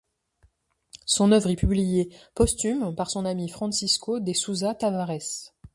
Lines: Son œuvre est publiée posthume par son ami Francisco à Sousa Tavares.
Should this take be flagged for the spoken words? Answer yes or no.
yes